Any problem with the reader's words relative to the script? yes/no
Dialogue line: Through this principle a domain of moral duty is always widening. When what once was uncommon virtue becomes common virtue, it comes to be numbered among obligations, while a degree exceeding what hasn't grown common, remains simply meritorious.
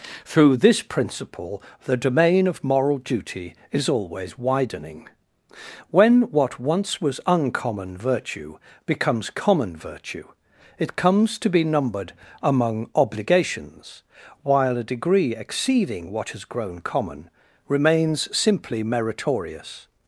yes